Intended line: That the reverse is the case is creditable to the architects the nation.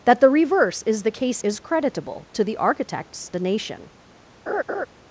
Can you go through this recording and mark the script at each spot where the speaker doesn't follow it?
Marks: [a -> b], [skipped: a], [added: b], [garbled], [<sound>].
That the reverse is the case is creditable to the architects the nation. [laugh]